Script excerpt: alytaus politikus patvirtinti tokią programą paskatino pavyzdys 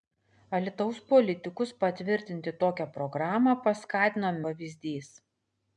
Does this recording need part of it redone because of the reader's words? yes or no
no